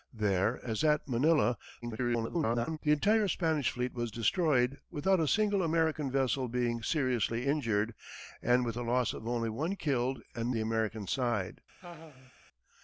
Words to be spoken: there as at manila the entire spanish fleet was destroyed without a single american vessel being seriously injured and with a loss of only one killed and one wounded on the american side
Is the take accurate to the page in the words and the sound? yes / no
no